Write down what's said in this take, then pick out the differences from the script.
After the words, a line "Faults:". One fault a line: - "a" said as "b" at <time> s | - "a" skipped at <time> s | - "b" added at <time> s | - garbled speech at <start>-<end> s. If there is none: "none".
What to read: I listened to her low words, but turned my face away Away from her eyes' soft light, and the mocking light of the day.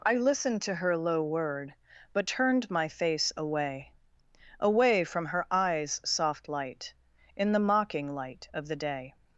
I listened to her low word, but turned my face away Away from her eyes' soft light, in the mocking light of the day.
Faults:
- "words" said as "word" at 1.2 s
- "and" said as "in" at 7.3 s